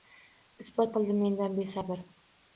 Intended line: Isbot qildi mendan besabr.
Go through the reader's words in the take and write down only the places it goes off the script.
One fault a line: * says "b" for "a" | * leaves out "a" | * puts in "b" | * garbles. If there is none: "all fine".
all fine